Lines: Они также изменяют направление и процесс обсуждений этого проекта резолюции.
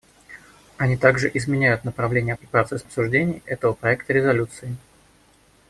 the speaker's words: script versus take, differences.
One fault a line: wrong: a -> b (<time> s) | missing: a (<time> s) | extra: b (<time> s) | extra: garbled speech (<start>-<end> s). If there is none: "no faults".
no faults